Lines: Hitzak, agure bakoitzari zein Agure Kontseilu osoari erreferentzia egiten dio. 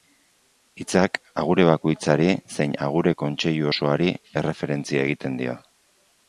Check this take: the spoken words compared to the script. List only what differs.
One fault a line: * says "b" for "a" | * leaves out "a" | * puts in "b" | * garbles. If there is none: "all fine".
all fine